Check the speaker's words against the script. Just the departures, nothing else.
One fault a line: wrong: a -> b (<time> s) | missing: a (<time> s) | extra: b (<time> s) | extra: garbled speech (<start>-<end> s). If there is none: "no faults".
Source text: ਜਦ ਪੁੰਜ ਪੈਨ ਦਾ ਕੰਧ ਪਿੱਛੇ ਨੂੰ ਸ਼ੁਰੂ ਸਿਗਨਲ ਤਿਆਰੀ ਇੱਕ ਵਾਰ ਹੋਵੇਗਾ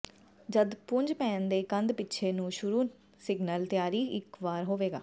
wrong: ਦਾ -> ਦੇ (1.5 s)